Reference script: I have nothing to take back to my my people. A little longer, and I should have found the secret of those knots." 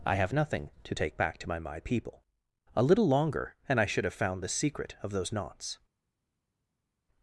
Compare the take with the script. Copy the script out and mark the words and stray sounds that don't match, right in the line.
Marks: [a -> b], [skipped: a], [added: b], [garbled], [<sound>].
I have nothing to take back to my my people. A little longer, and I should have found the secret of those knots."